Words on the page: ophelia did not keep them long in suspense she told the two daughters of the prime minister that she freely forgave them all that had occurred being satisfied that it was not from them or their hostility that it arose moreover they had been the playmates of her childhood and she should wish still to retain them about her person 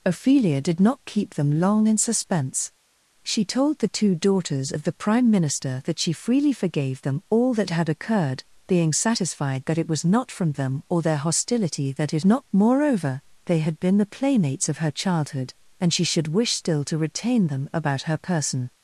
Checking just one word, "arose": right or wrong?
wrong